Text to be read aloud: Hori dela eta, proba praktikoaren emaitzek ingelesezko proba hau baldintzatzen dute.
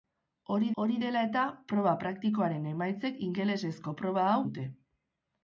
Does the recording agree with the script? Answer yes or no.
no